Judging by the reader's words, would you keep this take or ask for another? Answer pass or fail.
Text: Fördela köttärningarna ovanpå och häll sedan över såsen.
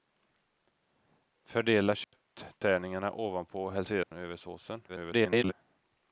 fail